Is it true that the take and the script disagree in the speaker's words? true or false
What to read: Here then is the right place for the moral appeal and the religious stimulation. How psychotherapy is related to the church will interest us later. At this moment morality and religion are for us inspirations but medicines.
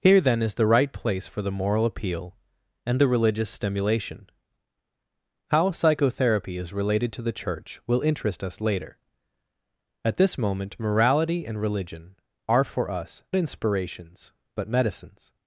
false